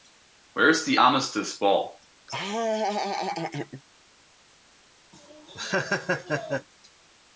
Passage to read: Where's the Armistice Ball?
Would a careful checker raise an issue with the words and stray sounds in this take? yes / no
yes